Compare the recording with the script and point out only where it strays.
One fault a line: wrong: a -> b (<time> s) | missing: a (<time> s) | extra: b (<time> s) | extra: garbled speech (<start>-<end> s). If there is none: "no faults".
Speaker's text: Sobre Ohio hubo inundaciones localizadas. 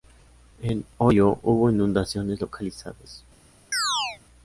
wrong: Sobre -> En (0.6 s)